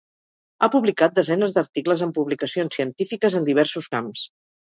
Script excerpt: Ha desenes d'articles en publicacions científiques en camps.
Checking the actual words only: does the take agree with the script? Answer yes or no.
no